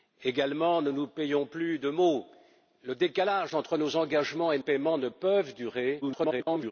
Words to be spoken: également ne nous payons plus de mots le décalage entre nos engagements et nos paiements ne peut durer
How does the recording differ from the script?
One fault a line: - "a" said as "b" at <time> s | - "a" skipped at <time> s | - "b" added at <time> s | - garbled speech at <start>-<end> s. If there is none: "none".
- "nos" skipped at 4.6 s
- garbled speech at 6.0-6.7 s